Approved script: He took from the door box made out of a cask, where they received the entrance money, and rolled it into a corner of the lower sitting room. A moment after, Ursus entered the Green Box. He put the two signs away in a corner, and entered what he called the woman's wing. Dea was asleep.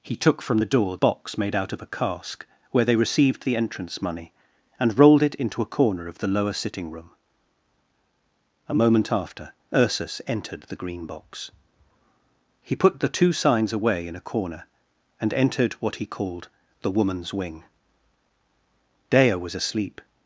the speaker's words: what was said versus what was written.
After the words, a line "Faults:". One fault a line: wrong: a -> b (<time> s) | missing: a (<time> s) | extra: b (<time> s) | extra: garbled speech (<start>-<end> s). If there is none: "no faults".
He took from the door box made out of a cask, where they received the entrance money, and rolled it into a corner of the lower sitting room. A moment after, Ursus entered the Green Box. He put the two signs away in a corner, and entered what he called the woman's wing. Dea was asleep.
Faults:
no faults